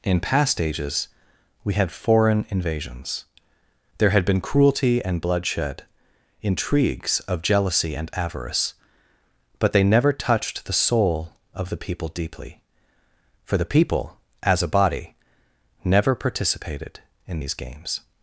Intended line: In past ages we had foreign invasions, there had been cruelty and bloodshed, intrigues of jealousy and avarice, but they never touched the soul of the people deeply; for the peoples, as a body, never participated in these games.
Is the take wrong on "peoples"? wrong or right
wrong